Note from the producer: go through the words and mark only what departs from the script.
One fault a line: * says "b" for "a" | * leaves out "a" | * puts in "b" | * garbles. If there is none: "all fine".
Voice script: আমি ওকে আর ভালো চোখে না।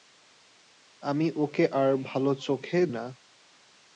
all fine